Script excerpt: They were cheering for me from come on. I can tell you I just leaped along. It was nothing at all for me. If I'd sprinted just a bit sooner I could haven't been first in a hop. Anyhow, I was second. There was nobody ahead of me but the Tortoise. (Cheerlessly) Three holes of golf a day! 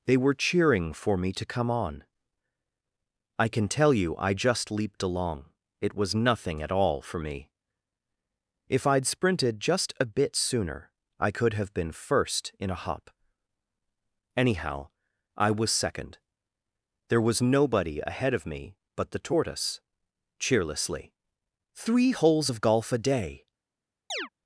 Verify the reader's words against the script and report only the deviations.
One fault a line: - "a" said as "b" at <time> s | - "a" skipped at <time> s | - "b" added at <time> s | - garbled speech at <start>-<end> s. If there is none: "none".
- "from" said as "to" at 1.3 s
- "haven't" said as "have" at 11.5 s